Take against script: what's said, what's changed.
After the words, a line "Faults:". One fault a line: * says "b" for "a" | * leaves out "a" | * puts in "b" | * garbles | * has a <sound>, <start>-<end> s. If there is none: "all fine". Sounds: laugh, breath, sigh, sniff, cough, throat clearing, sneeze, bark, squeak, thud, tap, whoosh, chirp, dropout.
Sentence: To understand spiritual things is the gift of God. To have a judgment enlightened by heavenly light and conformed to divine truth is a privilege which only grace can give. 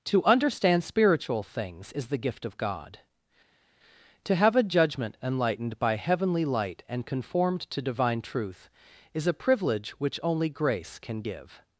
To understand spiritual things is the gift of God. To have a judgment enlightened by heavenly light and conformed to divine truth is a privilege which only grace can give.
Faults:
all fine